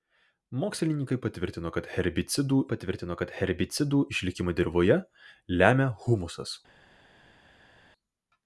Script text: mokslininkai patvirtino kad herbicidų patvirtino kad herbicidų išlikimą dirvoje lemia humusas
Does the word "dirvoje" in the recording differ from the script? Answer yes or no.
no